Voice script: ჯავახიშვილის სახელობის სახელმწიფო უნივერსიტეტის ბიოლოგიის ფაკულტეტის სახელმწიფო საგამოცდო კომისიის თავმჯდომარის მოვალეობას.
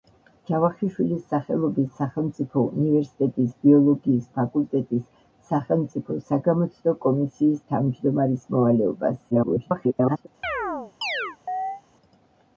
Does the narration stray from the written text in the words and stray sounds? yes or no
yes